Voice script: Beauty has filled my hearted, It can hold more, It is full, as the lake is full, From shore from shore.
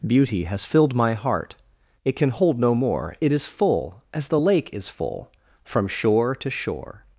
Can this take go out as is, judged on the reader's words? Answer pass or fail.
fail